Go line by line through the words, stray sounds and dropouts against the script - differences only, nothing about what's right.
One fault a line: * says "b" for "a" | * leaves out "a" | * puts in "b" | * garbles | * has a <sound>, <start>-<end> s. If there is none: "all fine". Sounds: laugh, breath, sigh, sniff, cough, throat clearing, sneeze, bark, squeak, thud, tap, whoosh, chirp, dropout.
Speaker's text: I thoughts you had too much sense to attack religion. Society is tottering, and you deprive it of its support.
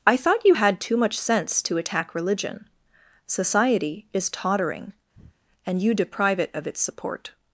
* says "thought" for "thoughts"
* has a breath, 5.1-5.4 s